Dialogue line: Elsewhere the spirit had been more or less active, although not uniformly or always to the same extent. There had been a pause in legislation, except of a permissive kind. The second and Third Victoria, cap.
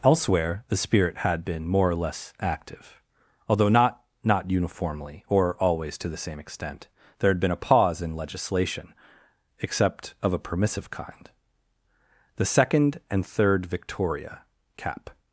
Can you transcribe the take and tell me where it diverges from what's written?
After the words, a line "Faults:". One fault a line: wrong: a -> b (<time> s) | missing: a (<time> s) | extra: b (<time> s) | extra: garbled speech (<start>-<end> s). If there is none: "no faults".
Elsewhere the spirit had been more or less active, although not not uniformly or always to the same extent. There had been a pause in legislation, except of a permissive kind. The second and Third Victoria, cap.
Faults:
extra: not (4.2 s)